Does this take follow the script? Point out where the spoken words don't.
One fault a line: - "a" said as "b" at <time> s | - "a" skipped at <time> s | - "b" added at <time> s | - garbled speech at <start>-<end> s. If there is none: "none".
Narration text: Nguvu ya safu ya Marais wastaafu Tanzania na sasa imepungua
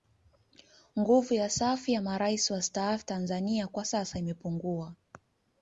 - "na" said as "kwa" at 3.7 s